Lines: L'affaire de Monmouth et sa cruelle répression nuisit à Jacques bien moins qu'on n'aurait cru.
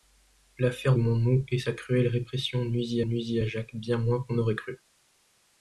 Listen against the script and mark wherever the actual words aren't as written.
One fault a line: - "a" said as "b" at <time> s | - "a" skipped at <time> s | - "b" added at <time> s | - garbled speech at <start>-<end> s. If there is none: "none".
- "de" skipped at 0.9 s
- "nuisit" added at 3.0 s